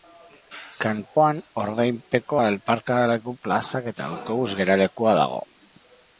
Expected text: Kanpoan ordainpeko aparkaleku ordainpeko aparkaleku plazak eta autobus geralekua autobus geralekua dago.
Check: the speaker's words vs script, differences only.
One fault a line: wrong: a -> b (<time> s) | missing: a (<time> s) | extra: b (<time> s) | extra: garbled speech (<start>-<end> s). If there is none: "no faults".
missing: ordainpeko aparkaleku (3.3 s)
missing: autobus geralekua (5.2 s)